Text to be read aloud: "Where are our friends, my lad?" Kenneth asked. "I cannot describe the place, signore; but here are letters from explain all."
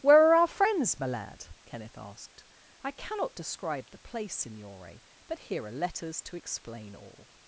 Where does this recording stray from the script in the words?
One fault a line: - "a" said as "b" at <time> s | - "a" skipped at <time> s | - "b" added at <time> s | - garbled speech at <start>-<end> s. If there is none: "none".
- "from" said as "to" at 6.2 s